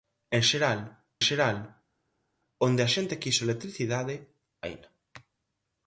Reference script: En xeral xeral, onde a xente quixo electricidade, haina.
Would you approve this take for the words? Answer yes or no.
yes